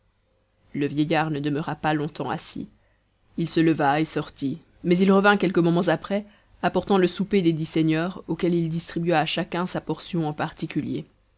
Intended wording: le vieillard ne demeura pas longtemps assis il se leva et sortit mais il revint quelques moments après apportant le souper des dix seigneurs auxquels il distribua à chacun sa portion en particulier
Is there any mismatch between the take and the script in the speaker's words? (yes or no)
no